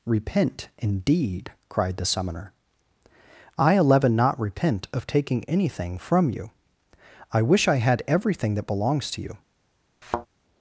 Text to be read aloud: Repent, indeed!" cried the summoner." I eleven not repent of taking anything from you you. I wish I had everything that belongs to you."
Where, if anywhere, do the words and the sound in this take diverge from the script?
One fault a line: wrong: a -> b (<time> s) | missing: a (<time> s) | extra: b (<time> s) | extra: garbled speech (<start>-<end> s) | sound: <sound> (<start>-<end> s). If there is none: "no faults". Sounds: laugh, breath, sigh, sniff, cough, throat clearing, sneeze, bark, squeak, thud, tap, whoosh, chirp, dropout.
missing: you (6.5 s)
sound: thud (10.0-10.3 s)